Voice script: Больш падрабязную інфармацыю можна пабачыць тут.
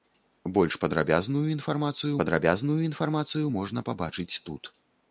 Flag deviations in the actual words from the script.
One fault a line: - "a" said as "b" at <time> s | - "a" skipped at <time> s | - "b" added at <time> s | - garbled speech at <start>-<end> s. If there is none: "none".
- "падрабязную інфармацыю" added at 2.2 s